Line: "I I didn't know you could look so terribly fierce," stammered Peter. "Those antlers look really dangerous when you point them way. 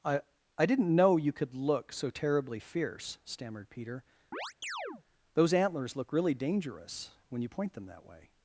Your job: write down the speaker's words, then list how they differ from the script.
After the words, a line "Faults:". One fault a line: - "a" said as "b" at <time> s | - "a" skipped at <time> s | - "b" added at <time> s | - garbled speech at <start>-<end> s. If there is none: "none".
"I I didn't know you could look so terribly fierce," stammered Peter. "Those antlers look really dangerous when you point them that way.
Faults:
- "that" added at 7.9 s